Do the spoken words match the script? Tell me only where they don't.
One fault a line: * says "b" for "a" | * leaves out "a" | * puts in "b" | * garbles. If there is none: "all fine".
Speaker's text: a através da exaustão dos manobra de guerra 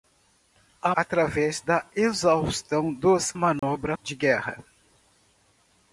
all fine